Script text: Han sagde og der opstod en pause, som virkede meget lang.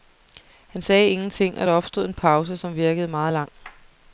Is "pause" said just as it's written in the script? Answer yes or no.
yes